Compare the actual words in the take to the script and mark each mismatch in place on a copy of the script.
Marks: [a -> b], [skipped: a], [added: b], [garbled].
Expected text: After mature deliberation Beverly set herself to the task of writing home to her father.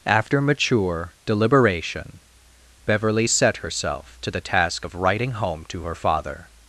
After mature deliberation Beverly set herself to the task of writing home to her father.